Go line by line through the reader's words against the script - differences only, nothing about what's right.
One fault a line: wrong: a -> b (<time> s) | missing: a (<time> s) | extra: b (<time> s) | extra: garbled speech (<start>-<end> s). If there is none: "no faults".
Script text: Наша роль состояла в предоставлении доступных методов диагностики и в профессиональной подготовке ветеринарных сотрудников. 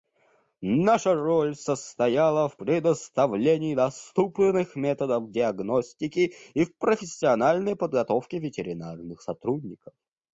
no faults